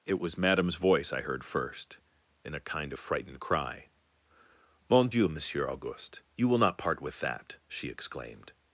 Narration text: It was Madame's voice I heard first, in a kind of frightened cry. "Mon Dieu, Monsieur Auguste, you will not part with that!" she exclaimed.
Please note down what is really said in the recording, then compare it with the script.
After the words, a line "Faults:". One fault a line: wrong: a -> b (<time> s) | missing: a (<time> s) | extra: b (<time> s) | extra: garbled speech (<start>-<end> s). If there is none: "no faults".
It was Madame's voice I heard first, in a kind of frightened cry. "Mon Dieu, Monsieur Auguste, you will not part with that!" she exclaimed.
Faults:
no faults